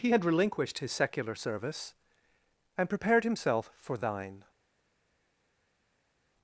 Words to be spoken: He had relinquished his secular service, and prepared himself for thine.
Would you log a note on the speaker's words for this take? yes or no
no